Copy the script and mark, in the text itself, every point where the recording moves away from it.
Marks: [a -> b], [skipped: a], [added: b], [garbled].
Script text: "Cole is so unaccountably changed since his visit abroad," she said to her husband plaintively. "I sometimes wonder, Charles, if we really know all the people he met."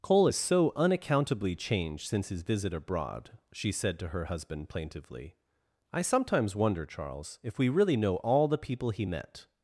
"Cole is so unaccountably changed since his visit abroad," she said to her husband plaintively. "I sometimes wonder, Charles, if we really know all the people he met."